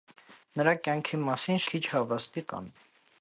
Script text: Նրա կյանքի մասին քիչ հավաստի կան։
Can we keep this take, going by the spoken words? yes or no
yes